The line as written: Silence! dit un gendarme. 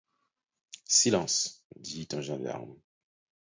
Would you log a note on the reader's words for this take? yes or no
no